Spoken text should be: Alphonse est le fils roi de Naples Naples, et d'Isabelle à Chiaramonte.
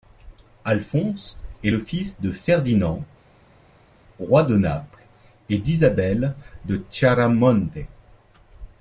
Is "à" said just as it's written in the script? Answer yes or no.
no